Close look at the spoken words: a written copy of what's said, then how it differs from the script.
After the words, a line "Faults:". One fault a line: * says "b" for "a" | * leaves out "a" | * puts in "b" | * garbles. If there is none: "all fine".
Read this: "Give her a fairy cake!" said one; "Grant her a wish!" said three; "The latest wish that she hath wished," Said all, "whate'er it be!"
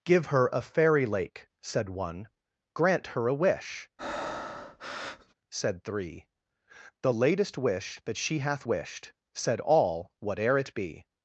"Give her a fairy lake!" said one; "Grant her a wish!" said three; "The latest wish that she hath wished," Said all, "whate'er it be!"
Faults:
* says "lake" for "cake"